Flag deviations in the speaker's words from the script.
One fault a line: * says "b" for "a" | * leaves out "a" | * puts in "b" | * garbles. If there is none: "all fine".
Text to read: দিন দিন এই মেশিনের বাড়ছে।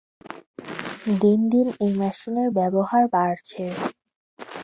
* puts in "ব্যবহার"